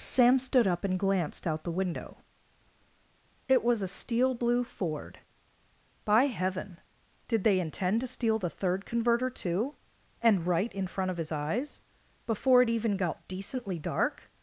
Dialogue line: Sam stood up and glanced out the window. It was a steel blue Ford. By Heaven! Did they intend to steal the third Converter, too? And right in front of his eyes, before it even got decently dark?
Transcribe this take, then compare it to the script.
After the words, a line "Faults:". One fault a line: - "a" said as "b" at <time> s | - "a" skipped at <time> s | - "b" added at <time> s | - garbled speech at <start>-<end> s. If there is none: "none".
Sam stood up and glanced out the window. It was a steel blue Ford. By Heaven! Did they intend to steal the third Converter, too? And right in front of his eyes, before it even got decently dark?
Faults:
none